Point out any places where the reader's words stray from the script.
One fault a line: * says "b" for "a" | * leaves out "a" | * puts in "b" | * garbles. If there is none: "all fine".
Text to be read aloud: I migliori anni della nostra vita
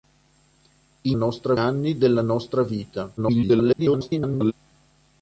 * says "nostra" for "migliori"
* garbles